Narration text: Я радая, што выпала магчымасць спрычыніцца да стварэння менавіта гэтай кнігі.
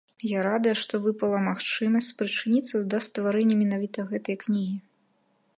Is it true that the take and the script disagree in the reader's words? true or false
false